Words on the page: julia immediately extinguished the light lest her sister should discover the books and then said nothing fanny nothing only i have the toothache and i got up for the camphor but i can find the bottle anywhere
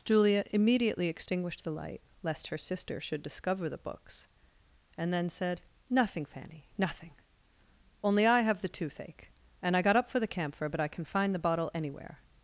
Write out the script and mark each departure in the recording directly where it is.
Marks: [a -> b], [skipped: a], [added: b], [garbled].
julia immediately extinguished the light lest her sister should discover the books and then said nothing fanny nothing only i have the toothache and i got up for the camphor but i can find the bottle anywhere